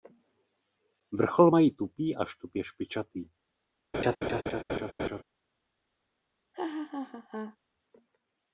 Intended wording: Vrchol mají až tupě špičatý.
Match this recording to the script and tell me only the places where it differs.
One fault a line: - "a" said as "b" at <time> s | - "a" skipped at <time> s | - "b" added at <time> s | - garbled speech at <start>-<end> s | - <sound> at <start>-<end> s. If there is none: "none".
- "tupý" added at 1.7 s
- laugh at 3.9-5.2 s
- laugh at 6.5-7.6 s